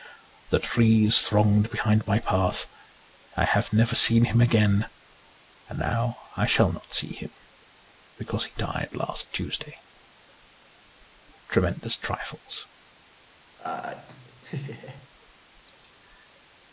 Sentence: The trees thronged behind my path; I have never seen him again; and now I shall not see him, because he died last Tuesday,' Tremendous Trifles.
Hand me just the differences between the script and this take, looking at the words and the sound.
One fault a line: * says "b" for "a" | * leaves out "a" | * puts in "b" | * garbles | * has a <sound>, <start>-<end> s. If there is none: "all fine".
* has a laugh, 13.6-15.1 s